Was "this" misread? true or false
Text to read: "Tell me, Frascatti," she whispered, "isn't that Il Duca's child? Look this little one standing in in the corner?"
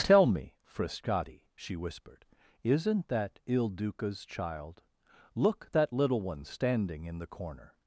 true